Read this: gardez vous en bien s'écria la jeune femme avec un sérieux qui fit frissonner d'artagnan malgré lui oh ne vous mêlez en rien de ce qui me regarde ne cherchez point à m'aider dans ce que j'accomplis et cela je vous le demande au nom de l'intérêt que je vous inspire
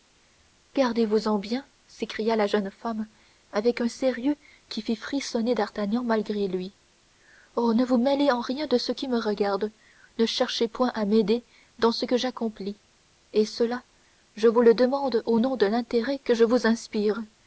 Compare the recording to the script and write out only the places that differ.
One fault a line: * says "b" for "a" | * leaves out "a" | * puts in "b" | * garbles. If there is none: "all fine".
all fine